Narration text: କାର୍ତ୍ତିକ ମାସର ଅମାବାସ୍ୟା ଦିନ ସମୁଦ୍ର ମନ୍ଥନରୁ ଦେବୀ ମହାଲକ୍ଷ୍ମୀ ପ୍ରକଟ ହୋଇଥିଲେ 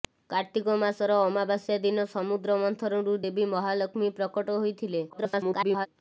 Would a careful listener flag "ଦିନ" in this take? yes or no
no